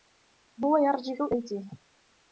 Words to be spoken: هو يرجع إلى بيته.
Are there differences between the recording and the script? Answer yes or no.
yes